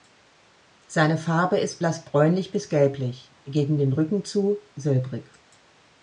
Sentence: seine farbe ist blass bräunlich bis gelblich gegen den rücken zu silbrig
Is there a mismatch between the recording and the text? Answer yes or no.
no